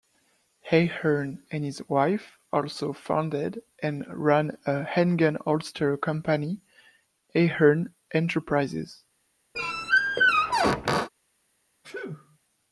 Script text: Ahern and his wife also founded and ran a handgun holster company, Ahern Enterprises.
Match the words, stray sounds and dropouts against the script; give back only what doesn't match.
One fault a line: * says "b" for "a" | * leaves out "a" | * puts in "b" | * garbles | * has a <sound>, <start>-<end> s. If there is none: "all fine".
* has a squeak, 9.5-11.1 s
* has a sneeze, 11.8-12.4 s